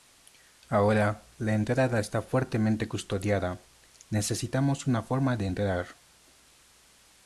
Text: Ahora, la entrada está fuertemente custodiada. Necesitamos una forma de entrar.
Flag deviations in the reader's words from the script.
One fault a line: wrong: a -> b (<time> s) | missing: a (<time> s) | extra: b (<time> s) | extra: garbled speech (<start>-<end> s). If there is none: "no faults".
no faults